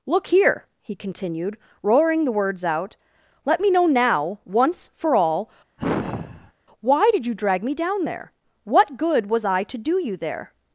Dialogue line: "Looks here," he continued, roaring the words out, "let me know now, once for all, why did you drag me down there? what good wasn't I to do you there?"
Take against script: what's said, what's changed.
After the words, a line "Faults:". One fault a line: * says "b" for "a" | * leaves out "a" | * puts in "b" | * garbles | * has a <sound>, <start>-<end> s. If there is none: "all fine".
"Look here," he continued, roaring the words out, "let me know now, once for all, why did you drag me down there? what good was I to do you there?"
Faults:
* says "Look" for "Looks"
* has a sigh, 5.8-6.5 s
* says "was" for "wasn't"